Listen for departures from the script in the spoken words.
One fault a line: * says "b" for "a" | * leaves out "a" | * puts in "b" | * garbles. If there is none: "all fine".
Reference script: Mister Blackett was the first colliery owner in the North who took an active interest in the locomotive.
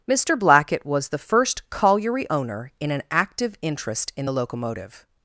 * leaves out "the North who took"